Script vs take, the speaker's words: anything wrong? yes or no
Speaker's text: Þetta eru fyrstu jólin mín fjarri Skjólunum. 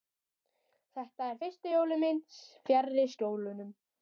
no